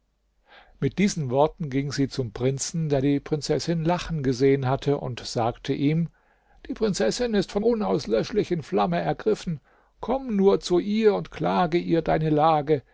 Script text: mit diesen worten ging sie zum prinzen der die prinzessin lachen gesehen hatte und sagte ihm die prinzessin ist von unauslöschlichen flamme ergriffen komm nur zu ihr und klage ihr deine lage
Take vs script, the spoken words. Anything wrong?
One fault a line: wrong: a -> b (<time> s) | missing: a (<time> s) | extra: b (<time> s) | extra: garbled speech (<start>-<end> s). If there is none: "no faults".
no faults